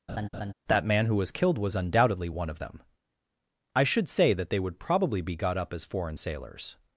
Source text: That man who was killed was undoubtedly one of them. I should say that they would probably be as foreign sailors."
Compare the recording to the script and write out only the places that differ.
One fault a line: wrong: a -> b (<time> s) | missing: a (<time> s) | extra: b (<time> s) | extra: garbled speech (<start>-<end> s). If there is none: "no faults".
extra: got up (5.3 s)